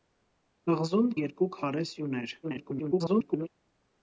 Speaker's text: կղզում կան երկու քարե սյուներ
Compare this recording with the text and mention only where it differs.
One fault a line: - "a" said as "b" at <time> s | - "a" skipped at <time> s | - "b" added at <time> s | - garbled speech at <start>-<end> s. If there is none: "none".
- "կան" skipped at 1.1 s
- garbled speech at 2.4-3.5 s